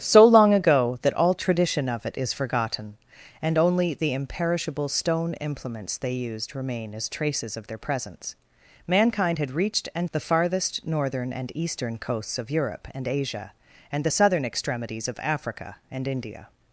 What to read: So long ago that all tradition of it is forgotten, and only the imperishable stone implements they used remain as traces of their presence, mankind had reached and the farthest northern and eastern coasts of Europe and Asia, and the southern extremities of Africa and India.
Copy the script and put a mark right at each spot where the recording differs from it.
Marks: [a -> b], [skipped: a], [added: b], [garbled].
So long ago that all tradition of it is forgotten, and only the imperishable stone implements they used remain as traces of their presence, mankind had reached and the farthest northern and eastern coasts of Europe and Asia, and the southern extremities of Africa and India.